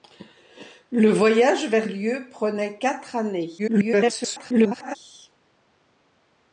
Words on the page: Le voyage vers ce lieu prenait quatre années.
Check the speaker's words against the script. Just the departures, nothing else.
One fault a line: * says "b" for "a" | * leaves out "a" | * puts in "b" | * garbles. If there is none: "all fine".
* leaves out "ce"
* garbles